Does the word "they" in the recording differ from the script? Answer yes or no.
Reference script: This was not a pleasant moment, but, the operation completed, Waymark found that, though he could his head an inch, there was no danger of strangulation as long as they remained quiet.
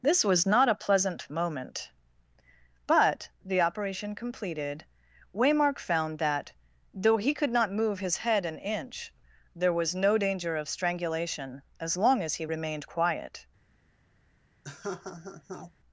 yes